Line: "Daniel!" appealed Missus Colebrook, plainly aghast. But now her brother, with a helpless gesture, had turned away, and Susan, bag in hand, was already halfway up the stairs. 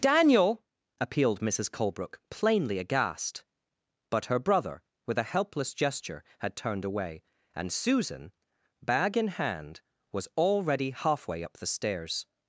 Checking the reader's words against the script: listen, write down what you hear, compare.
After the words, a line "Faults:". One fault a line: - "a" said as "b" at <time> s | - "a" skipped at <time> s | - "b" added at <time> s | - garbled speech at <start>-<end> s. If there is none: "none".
"Daniel!" appealed Missus Colebrook, plainly aghast. But her brother, with a helpless gesture, had turned away, and Susan, bag in hand, was already halfway up the stairs.
Faults:
- "now" skipped at 4.2 s